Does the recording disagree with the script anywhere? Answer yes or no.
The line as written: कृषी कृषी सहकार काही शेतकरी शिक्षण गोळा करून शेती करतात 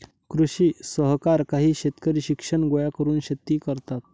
yes